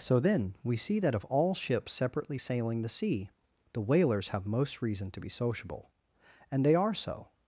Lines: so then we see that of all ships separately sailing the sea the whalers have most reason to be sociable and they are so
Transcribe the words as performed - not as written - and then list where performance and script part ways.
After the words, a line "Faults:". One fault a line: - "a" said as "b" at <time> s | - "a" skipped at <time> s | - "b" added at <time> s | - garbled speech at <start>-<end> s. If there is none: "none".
so then we see that of all ships separately sailing the sea the whalers have most reason to be sociable and they are so
Faults:
none